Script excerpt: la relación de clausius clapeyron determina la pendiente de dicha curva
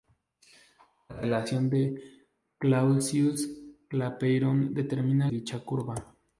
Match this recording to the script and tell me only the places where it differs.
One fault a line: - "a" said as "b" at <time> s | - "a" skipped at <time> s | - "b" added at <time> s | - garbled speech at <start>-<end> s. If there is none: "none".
- "la pendiente de" skipped at 5.3 s